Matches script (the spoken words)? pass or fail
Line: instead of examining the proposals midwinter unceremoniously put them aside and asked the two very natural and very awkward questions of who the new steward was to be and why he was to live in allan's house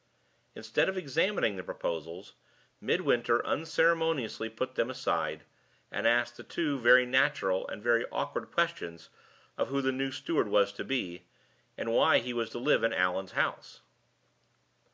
pass